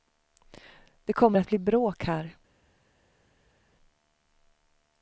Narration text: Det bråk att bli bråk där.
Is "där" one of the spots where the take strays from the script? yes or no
yes